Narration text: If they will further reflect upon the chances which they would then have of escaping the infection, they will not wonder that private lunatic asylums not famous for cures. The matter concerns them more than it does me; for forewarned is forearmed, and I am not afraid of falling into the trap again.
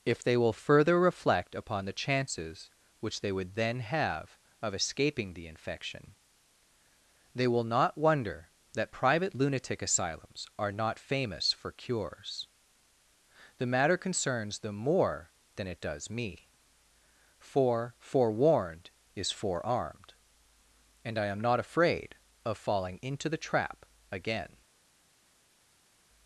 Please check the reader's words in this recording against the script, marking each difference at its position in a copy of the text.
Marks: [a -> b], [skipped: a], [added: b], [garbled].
If they will further reflect upon the chances which they would then have of escaping the infection, they will not wonder that private lunatic asylums [added: are] not famous for cures. The matter concerns them more than it does me; for forewarned is forearmed, and I am not afraid of falling into the trap again.